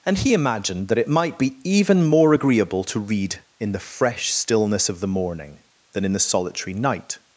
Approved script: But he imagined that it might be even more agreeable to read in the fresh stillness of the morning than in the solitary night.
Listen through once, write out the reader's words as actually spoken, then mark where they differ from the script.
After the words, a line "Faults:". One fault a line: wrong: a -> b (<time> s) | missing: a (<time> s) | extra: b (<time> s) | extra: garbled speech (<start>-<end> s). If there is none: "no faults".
And he imagined that it might be even more agreeable to read in the fresh stillness of the morning than in the solitary night.
Faults:
wrong: But -> And (0.1 s)